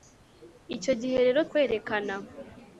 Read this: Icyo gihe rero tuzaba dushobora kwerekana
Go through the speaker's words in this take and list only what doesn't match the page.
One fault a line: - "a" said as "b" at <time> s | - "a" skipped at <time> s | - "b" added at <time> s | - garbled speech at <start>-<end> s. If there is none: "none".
- "tuzaba dushobora" skipped at 1.4 s